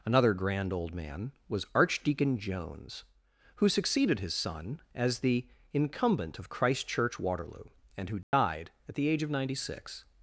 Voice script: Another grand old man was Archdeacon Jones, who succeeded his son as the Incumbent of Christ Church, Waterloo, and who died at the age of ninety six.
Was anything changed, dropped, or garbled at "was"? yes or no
no